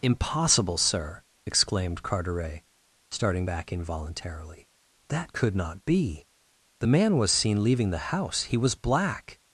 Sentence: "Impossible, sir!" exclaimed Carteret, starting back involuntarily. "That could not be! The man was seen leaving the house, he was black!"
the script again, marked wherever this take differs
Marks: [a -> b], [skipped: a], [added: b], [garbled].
"Impossible, sir!" exclaimed Carteret, starting back involuntarily. "That could not be! The man was seen leaving the house, he was black!"